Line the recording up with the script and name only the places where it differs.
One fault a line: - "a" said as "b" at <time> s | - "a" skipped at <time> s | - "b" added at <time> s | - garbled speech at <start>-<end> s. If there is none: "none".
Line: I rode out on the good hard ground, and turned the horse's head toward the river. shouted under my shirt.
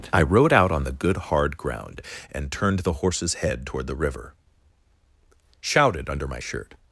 none